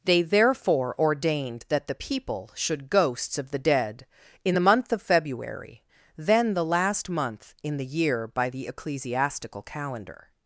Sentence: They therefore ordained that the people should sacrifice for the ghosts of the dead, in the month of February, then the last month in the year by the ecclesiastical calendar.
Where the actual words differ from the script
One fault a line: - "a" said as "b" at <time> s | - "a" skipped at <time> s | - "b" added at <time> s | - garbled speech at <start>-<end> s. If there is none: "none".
- "sacrifice for the" skipped at 2.9 s